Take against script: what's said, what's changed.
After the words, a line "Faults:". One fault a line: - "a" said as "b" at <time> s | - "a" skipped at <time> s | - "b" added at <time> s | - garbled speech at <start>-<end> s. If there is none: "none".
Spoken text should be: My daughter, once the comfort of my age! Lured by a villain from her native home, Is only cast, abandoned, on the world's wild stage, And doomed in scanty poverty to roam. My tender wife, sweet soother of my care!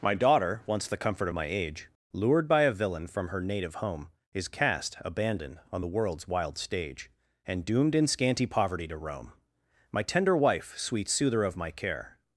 My daughter, once the comfort of my age! Lured by a villain from her native home, Is cast, abandoned, on the world's wild stage, And doomed in scanty poverty to roam. My tender wife, sweet soother of my care!
Faults:
- "only" skipped at 4.5 s